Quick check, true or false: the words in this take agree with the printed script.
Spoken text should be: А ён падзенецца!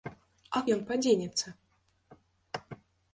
true